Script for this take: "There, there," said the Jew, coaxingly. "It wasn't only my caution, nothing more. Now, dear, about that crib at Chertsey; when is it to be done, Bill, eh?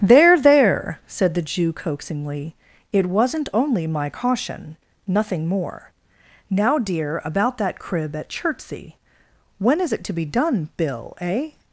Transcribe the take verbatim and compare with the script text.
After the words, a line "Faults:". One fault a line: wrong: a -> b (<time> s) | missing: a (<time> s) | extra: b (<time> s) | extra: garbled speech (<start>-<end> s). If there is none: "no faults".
"There, there," said the Jew, coaxingly. "It wasn't only my caution, nothing more. Now, dear, about that crib at Chertsey; when is it to be done, Bill, eh?
Faults:
no faults